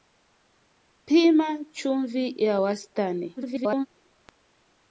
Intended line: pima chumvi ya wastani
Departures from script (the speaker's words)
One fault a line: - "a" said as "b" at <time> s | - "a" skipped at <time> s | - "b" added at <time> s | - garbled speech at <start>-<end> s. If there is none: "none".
- garbled speech at 3.4-3.9 s